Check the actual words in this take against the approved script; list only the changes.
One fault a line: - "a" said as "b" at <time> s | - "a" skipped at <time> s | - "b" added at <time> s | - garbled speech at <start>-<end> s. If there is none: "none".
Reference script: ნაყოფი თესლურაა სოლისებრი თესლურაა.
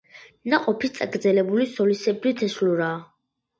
- "თესლურაა" said as "წაგრძელებული" at 0.9 s